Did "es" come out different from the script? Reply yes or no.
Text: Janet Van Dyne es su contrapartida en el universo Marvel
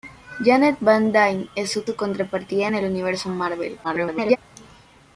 no